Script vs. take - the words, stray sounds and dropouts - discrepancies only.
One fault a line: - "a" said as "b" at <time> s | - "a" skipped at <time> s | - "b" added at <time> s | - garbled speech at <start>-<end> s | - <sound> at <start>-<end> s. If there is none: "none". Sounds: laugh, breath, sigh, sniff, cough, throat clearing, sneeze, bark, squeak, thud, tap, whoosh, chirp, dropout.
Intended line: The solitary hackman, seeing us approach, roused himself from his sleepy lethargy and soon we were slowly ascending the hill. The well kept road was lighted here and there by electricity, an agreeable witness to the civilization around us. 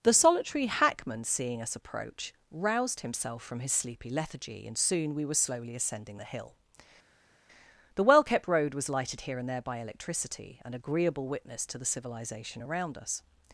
none